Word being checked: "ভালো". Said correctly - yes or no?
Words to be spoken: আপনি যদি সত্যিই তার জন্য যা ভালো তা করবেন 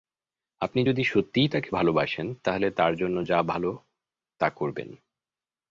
yes